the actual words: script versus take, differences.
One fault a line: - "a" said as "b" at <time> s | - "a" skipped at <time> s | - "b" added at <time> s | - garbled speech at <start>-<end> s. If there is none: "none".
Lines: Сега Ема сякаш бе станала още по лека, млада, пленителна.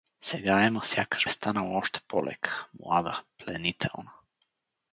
- "бе" skipped at 1.3 s